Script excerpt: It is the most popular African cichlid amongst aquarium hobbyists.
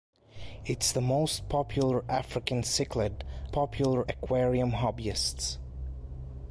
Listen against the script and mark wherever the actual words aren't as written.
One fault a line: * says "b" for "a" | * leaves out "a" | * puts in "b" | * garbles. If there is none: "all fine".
* says "popular" for "amongst"